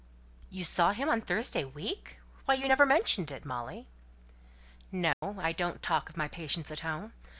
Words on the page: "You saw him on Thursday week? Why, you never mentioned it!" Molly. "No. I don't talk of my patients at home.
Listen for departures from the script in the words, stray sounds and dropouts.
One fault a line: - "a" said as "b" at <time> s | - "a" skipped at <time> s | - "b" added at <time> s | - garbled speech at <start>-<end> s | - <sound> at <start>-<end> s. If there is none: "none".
- dropout at 5.1-5.2 s